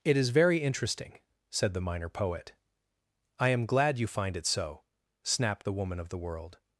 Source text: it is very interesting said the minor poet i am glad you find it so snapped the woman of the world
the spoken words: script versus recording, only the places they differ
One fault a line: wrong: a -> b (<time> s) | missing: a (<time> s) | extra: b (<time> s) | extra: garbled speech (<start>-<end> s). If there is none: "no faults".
no faults